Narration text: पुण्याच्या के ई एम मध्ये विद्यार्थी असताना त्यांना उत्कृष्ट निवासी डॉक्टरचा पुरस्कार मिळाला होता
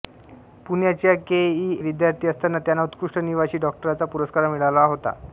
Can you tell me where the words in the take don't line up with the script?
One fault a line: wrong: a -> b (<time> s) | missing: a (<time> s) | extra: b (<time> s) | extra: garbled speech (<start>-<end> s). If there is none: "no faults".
missing: एम मध्ये (1.8 s)